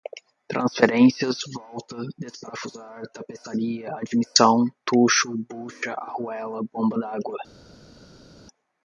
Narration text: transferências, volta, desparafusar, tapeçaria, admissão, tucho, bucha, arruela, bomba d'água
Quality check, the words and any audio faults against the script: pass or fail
pass